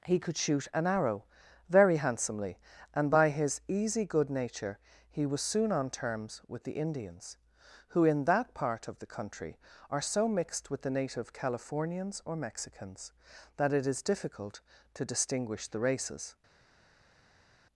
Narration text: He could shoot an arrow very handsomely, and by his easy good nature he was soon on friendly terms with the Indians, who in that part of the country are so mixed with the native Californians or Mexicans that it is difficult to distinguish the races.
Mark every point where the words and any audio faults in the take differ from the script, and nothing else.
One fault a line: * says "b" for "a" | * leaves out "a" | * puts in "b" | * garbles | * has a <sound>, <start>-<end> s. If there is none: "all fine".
* leaves out "friendly"